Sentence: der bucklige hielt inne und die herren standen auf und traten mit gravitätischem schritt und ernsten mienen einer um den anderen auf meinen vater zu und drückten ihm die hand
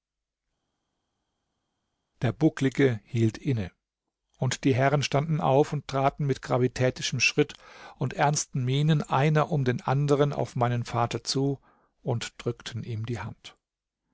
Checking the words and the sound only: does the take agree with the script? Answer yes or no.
yes